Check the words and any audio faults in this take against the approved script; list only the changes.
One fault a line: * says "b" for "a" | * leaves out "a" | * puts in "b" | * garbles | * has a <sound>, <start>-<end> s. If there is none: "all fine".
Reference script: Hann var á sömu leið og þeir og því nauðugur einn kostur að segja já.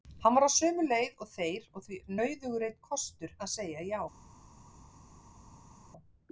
all fine